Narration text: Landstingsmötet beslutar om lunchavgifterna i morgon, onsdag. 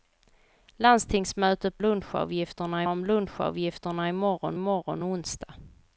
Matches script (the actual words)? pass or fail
fail